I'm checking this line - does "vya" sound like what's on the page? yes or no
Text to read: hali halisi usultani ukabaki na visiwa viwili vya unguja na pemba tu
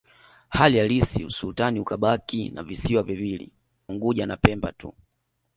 no